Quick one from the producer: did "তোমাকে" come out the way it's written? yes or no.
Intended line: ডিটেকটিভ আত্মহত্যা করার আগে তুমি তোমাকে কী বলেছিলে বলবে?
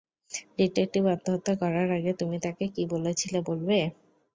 no